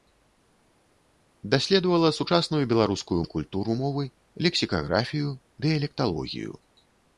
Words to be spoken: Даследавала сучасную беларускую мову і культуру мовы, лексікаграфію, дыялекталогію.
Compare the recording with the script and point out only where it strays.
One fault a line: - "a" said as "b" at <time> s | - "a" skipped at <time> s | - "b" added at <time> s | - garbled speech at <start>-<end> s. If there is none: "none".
- "мову" skipped at 3.2 s